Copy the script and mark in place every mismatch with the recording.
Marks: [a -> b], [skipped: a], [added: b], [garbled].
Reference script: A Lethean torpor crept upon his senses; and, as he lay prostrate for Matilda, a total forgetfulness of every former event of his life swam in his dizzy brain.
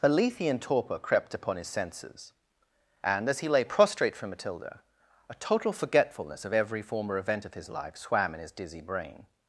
A Lethean torpor crept upon his senses; and, as he lay prostrate for Matilda, a total forgetfulness of every former event of his life swam in his dizzy brain.